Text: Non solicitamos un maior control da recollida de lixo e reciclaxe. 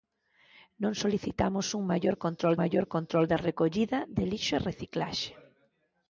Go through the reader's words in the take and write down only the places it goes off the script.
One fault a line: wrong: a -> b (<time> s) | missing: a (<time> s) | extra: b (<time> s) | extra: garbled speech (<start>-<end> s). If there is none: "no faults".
extra: maior control (2.6 s)